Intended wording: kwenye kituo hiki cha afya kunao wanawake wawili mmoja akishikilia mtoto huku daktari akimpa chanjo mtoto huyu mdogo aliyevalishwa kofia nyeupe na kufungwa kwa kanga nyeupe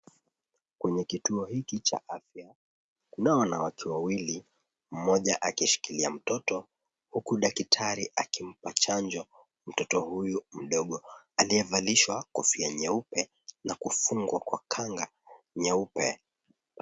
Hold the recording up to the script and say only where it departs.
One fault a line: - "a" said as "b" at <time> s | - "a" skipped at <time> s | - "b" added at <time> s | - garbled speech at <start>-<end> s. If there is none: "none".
none